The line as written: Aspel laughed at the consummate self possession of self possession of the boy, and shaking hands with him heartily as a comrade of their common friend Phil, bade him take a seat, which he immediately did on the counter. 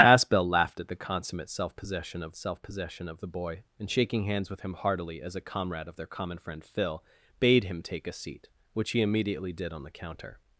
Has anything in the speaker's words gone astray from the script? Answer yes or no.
no